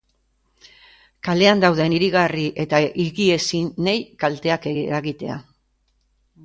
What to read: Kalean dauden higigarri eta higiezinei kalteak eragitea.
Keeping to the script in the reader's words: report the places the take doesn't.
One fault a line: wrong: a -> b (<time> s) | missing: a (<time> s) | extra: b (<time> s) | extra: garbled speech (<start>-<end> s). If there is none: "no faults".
no faults